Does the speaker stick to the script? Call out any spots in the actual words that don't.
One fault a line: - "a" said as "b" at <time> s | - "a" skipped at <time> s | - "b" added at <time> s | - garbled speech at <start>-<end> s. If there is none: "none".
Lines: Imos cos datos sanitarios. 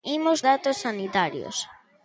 - "cos" skipped at 0.4 s